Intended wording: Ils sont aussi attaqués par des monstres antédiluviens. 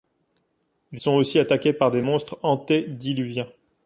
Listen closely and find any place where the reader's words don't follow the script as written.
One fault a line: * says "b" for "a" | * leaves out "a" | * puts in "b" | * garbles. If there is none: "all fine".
all fine